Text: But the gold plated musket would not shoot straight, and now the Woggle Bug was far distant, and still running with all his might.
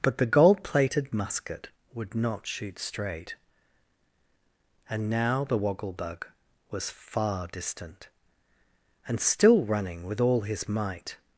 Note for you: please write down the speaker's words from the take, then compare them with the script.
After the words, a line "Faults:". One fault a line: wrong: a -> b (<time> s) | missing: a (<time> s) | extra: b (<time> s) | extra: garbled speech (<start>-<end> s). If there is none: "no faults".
But the gold plated musket would not shoot straight, and now the Woggle Bug was far distant, and still running with all his might.
Faults:
no faults